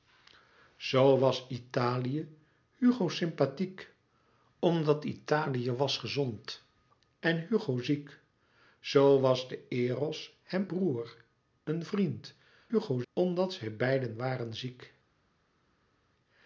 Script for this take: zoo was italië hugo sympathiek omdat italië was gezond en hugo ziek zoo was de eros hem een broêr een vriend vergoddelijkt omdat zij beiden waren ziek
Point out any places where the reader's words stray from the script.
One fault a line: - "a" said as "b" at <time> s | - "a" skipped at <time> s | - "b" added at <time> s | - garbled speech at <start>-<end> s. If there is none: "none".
- "een" skipped at 10.7 s
- "vergoddelijkt" said as "hugo" at 12.7 s